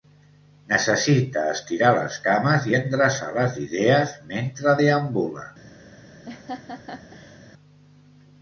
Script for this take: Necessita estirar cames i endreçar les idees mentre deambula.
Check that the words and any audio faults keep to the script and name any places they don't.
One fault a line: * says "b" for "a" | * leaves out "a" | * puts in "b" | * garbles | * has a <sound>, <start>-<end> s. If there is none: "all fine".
* puts in "les"
* has a laugh, 6.3-7.4 s